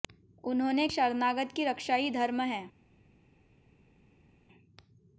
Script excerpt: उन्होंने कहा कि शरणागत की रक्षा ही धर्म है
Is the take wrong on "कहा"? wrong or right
wrong